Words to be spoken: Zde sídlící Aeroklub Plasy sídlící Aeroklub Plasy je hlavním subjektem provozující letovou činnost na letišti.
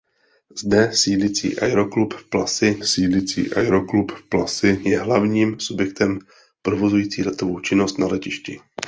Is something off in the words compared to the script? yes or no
no